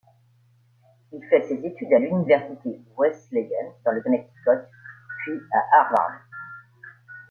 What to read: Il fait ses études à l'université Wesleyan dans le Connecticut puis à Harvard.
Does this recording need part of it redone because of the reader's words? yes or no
no